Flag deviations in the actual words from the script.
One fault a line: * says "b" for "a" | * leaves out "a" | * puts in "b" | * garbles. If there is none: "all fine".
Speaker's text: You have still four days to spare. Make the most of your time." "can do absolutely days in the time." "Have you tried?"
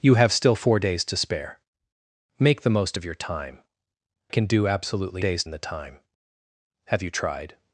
all fine